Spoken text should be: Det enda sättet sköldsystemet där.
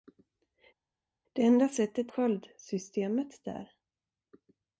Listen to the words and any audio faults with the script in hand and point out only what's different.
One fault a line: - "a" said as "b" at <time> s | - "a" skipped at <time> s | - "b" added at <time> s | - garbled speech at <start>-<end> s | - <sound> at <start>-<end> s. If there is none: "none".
none